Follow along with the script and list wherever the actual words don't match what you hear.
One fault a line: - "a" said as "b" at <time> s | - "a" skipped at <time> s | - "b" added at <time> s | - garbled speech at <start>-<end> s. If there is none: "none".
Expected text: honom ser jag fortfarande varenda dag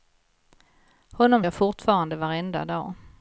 - "ser" skipped at 1.4 s